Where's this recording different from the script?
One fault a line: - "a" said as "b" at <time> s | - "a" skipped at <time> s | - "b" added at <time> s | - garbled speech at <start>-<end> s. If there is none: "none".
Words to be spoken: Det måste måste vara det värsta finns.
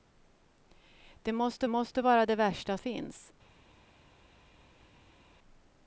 none